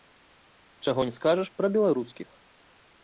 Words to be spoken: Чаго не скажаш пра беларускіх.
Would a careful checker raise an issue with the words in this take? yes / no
no